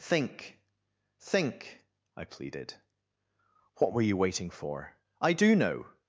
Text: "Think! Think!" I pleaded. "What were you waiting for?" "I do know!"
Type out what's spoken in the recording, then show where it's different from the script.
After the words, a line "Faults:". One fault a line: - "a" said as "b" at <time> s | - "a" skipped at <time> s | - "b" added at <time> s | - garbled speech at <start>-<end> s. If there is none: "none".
"Think! Think!" I pleaded. "What were you waiting for?" "I do know!"
Faults:
none